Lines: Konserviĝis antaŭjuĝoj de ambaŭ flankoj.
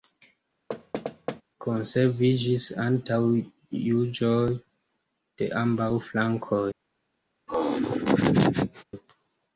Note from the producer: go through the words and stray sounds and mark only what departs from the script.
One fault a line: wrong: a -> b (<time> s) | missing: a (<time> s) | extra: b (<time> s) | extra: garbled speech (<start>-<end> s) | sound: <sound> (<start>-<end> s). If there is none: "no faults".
sound: thud (0.7-1.4 s)
sound: laugh (7.5-8.8 s)